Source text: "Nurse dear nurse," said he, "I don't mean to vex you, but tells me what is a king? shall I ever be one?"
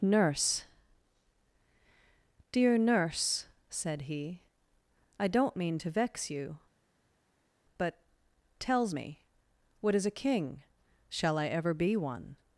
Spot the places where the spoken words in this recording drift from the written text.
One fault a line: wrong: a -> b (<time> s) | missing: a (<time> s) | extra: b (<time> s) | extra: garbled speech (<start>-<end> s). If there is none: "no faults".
no faults